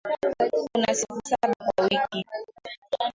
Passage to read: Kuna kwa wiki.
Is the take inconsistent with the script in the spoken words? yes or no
yes